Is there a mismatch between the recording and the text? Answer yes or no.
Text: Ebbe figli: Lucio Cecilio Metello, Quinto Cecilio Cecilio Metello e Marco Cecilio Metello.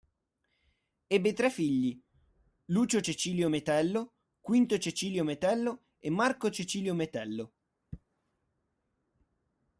yes